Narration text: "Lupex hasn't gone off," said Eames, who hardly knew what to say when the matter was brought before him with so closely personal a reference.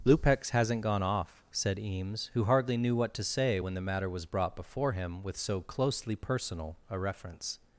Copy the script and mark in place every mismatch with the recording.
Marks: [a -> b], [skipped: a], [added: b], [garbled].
"Lupex hasn't gone off," said Eames, who hardly knew what to say when the matter was brought before him with so closely personal a reference.